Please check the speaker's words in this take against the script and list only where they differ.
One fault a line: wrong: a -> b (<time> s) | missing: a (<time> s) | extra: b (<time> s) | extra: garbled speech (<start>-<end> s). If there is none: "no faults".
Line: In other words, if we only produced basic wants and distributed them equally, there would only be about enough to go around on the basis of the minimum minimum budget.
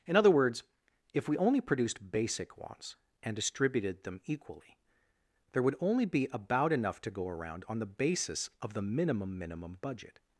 no faults